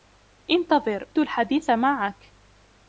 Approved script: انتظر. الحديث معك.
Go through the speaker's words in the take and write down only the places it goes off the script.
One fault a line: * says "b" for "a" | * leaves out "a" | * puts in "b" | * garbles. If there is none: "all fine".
all fine